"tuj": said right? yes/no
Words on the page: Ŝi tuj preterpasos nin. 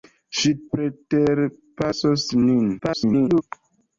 no